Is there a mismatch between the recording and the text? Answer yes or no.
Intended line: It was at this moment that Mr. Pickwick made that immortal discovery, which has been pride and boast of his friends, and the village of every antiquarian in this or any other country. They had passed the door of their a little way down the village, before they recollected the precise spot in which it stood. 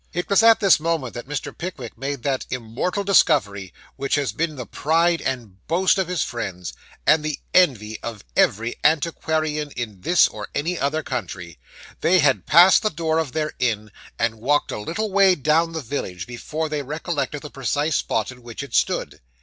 yes